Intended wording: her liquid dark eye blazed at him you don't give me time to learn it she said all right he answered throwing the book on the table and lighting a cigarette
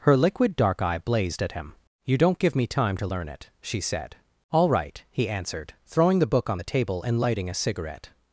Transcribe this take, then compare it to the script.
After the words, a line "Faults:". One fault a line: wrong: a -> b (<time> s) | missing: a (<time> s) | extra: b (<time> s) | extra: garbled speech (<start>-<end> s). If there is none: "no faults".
her liquid dark eye blazed at him you don't give me time to learn it she said all right he answered throwing the book on the table and lighting a cigarette
Faults:
no faults